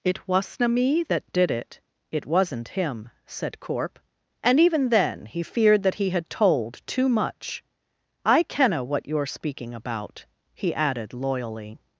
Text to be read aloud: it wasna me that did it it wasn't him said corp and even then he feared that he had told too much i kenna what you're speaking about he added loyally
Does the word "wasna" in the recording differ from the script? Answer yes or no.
no